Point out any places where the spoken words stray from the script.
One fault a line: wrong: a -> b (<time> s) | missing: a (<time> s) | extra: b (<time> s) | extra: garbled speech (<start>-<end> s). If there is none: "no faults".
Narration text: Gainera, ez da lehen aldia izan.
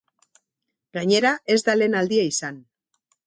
no faults